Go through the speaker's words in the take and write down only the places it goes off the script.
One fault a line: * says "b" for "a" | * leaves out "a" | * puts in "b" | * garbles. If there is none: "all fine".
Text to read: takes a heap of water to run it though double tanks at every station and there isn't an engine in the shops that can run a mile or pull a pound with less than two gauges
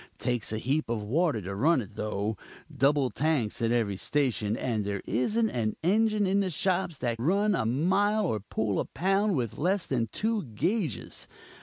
* leaves out "can"